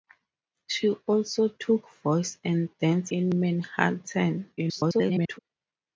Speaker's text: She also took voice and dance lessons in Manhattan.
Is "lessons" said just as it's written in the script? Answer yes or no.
no